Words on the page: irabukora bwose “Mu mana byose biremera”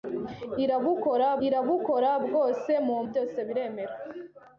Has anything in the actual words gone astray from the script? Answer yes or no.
yes